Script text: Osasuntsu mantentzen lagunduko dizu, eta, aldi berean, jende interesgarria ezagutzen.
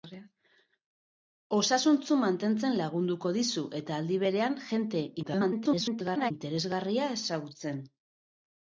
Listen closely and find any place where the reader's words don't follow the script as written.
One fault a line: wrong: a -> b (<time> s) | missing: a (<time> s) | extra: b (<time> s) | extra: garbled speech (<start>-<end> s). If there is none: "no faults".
extra: garbled speech (5.2-6.3 s)